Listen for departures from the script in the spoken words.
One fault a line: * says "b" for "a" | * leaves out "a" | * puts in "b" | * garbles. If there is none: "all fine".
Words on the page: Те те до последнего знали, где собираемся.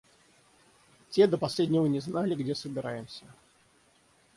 * leaves out "те"
* puts in "не"